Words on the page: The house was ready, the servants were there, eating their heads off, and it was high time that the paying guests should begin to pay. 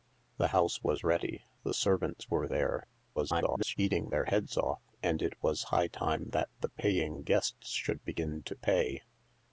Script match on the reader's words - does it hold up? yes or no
no